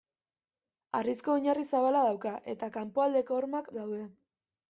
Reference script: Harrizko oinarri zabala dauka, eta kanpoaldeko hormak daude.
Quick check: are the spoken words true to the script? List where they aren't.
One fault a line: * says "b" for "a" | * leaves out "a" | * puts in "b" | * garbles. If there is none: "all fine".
all fine